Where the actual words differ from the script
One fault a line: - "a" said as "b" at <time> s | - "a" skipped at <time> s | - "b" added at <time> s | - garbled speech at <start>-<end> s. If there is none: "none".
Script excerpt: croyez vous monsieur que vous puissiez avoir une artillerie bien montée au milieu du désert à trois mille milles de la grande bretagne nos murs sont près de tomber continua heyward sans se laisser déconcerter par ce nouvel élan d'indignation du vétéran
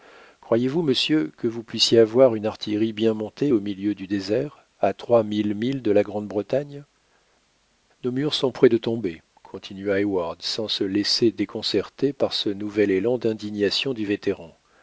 none